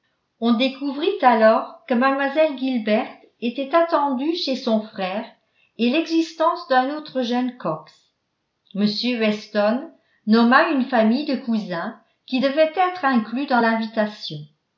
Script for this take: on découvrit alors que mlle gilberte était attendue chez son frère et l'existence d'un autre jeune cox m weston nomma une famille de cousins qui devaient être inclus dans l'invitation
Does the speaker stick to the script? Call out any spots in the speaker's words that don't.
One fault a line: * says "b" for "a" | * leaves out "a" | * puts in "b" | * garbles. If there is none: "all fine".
all fine